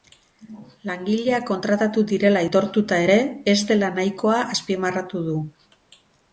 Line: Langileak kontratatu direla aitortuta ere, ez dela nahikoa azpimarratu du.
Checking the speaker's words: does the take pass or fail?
pass